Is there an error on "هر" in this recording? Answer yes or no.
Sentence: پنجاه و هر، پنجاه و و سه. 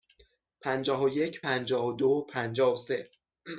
yes